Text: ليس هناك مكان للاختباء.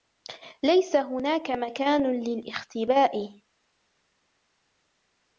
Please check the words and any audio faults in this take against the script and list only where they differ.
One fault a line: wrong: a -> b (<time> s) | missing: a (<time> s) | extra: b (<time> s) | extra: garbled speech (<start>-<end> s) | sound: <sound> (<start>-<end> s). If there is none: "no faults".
no faults